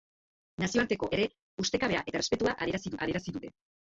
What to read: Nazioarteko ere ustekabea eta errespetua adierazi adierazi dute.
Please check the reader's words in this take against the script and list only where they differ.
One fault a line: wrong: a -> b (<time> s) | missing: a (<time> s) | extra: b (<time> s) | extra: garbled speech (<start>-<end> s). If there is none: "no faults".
no faults